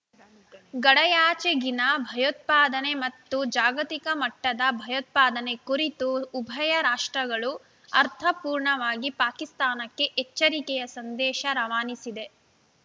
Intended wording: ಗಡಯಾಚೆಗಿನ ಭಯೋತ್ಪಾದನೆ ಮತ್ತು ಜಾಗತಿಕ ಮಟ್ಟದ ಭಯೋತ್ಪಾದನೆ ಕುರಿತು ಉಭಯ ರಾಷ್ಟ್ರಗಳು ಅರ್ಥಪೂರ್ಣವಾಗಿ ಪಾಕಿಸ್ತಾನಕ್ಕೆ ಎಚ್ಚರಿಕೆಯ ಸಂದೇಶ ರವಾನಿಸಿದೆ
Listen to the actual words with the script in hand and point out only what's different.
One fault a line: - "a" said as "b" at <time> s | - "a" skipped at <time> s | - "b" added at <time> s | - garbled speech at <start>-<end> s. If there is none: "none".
none